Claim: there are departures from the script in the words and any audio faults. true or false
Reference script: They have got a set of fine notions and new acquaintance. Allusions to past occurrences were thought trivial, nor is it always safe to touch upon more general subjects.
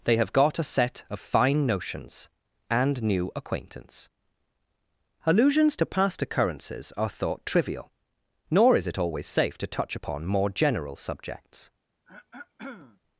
true